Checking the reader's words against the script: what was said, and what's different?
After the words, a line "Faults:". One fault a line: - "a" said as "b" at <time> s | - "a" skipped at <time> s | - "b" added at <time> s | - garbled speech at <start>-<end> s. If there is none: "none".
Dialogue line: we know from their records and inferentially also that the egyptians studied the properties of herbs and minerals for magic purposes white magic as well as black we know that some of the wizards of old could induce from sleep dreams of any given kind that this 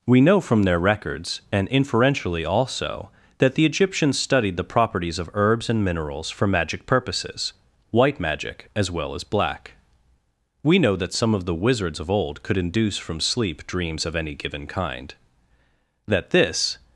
we know from their records and inferentially also that the egyptians studied the properties of herbs and minerals for magic purposes white magic as well as black we know that some of the wizards of old could induce from sleep dreams of any given kind that this
Faults:
none